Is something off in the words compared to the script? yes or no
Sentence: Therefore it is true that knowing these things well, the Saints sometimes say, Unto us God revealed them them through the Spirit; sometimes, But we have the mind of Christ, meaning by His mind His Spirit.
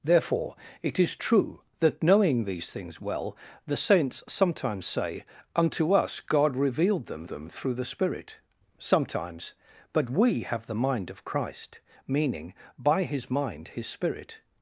no